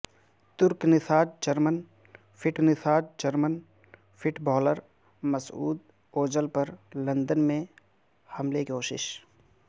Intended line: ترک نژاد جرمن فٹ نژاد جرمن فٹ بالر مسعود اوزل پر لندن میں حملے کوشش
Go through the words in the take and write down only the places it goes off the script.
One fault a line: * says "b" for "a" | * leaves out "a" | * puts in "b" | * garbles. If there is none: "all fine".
all fine